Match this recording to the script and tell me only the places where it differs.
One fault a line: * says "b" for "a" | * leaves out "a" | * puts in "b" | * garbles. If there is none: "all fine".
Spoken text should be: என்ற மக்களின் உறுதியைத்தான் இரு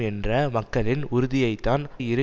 all fine